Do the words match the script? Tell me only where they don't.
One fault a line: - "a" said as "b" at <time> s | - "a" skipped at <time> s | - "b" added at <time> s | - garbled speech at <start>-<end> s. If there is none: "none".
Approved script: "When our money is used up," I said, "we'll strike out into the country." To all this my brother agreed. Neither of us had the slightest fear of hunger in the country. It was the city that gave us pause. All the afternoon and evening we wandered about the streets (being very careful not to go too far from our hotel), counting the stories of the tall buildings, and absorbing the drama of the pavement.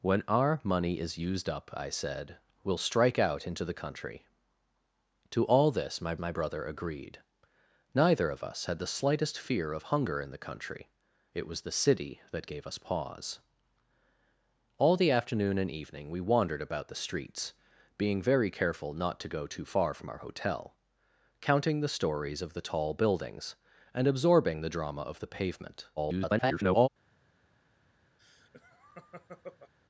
- "my" added at 6.2 s
- garbled speech at 26.0-26.9 s